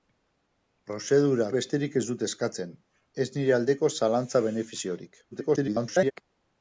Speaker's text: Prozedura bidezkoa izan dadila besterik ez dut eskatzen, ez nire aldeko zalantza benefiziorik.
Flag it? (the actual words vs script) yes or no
yes